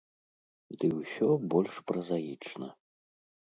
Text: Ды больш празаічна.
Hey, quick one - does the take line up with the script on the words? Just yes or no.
no